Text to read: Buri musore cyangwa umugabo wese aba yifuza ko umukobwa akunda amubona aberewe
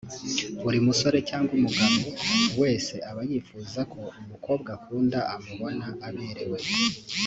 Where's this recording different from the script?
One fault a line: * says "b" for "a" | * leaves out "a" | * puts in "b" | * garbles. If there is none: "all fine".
all fine